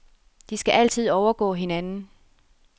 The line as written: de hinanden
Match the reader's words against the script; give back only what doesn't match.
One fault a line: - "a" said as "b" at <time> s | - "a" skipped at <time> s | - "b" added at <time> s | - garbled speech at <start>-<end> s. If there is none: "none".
- "skal altid overgå" added at 0.6 s